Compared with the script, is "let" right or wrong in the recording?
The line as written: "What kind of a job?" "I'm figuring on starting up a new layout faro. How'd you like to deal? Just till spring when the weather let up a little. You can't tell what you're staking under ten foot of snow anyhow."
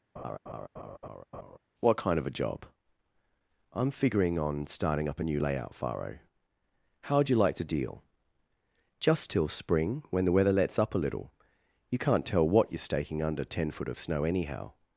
wrong